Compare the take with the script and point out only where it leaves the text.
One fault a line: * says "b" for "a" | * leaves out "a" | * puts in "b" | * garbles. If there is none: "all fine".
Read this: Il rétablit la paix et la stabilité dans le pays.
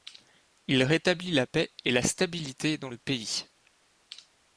all fine